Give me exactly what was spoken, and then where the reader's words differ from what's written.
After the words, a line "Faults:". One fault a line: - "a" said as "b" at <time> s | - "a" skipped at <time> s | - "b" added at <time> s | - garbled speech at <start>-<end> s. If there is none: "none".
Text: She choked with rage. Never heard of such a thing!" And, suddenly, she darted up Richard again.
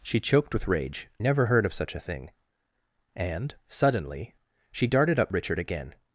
She choked with rage. Never heard of such a thing!" And, suddenly, she darted up Richard again.
Faults:
none